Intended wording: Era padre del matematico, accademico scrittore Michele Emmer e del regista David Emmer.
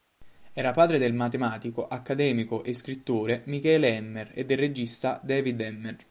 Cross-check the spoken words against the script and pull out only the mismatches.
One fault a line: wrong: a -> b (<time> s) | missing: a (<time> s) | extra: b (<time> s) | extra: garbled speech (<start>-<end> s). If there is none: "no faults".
extra: e (2.6 s)